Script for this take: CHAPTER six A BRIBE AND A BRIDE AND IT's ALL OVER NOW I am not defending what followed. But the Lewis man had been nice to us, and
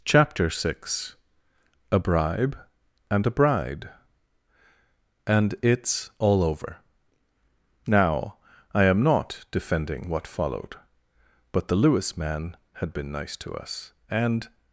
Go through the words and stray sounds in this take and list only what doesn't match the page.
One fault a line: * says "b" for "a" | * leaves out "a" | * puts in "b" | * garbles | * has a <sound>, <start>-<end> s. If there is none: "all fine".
all fine